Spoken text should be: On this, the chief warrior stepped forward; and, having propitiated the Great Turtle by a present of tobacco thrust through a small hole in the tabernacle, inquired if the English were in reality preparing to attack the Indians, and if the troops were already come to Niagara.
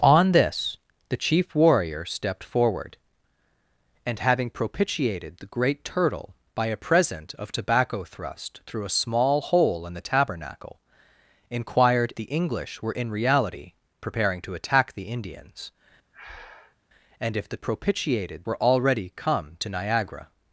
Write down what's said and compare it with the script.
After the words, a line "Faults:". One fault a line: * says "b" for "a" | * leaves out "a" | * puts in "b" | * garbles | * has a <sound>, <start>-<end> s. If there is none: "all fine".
On this, the chief warrior stepped forward; and, having propitiated the Great Turtle by a present of tobacco thrust through a small hole in the tabernacle, inquired the English were in reality preparing to attack the Indians, and if the propitiated were already come to Niagara.
Faults:
* leaves out "if"
* has a breath, 16.1-16.8 s
* says "propitiated" for "troops"